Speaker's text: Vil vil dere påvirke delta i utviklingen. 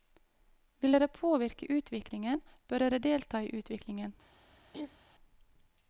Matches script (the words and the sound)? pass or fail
fail